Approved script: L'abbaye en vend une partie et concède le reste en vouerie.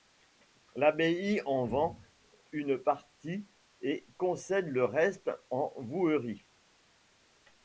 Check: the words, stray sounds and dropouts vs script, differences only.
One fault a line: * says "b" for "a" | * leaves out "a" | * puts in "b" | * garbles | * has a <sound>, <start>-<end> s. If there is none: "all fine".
all fine